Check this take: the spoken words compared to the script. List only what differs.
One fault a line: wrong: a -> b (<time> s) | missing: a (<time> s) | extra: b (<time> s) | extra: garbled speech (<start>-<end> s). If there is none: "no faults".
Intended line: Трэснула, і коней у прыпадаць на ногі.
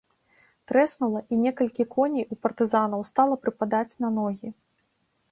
extra: некалькі (1.4 s)
extra: партызанаў стала (2.5 s)